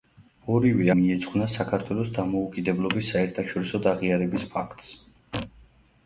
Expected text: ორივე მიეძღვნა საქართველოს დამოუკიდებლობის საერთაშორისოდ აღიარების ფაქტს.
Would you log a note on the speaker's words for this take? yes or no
no